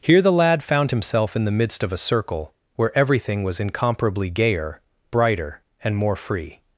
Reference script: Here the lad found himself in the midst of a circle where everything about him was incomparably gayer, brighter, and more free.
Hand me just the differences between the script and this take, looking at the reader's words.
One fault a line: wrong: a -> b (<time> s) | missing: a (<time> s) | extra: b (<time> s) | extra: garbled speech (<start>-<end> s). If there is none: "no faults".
missing: about him (3.4 s)